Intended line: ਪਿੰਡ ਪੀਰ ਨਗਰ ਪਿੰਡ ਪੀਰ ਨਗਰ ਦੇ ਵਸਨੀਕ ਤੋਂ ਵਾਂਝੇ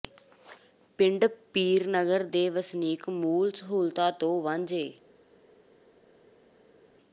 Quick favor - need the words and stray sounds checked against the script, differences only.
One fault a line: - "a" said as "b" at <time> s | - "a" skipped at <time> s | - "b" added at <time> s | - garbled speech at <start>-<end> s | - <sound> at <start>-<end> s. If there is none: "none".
- "ਪਿੰਡ ਪੀਰ ਨਗਰ ਦੇ ਵਸਨੀਕ" said as "ਦੇ ਵਸਨੀਕ ਮੂਲ ਸਹੂਲਤਾਂ" at 2.3 s